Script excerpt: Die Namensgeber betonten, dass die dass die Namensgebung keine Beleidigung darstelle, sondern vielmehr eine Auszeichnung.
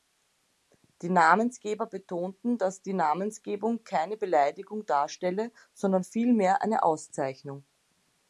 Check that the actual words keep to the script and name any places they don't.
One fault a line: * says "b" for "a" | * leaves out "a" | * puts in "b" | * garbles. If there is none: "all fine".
* leaves out "dass die"